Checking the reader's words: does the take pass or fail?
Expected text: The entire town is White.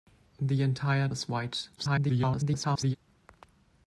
fail